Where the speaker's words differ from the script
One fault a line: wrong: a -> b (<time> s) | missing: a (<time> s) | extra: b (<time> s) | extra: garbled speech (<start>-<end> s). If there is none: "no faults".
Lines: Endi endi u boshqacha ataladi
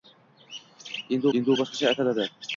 no faults